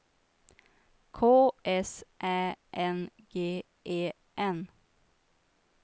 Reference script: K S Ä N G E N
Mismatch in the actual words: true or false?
false